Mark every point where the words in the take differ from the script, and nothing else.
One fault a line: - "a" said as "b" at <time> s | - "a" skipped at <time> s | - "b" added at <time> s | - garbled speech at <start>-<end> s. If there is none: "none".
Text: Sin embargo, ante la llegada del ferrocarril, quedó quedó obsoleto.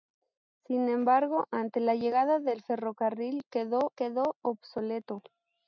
none